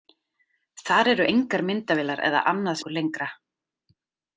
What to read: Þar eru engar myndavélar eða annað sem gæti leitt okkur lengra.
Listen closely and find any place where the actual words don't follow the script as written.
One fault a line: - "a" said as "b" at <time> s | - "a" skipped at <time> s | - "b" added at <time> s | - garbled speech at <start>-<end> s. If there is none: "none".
- "sem gæti leitt" skipped at 2.8 s